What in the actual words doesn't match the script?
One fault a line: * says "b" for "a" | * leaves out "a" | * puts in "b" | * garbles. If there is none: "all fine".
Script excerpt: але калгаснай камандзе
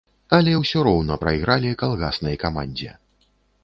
* puts in "ўсё роўна прайгралі"